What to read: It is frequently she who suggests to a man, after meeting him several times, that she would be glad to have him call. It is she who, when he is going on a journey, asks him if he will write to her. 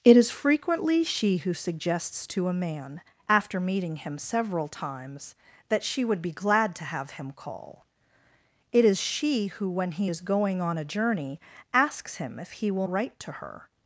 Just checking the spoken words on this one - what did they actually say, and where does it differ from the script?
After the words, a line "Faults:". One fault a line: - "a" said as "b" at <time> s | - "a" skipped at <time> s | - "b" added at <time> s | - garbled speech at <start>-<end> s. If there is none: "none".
It is frequently she who suggests to a man, after meeting him several times, that she would be glad to have him call. It is she who, when he is going on a journey, asks him if he will write to her.
Faults:
none